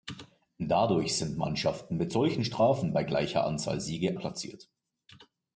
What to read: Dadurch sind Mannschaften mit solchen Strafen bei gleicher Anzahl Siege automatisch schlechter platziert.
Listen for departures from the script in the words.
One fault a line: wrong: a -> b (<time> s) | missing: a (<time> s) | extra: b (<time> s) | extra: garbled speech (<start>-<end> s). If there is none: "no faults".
missing: automatisch schlechter (4.2 s)